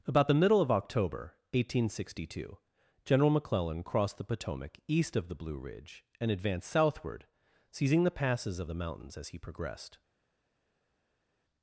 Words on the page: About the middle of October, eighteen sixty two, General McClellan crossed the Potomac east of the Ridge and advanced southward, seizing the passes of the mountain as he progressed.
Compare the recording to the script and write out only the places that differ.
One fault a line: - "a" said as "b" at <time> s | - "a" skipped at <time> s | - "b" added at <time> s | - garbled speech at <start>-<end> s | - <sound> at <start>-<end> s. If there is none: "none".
- "Blue" added at 5.4 s
- "mountain" said as "mountains" at 8.7 s